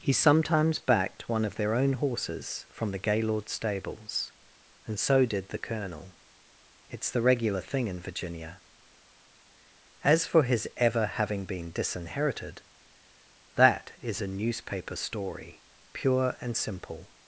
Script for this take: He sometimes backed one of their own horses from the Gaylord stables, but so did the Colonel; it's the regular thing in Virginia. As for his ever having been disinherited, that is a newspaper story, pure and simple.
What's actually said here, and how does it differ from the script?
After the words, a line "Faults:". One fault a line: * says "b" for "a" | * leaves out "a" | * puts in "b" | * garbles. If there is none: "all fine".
He sometimes backed one of their own horses from the Gaylord stables, and so did the Colonel; it's the regular thing in Virginia. As for his ever having been disinherited, that is a newspaper story, pure and simple.
Faults:
* says "and" for "but"